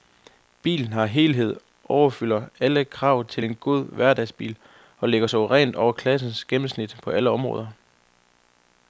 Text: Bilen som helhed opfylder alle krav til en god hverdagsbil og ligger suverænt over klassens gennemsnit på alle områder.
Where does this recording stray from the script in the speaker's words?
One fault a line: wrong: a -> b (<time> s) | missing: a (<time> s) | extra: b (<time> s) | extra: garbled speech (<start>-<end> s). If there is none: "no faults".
no faults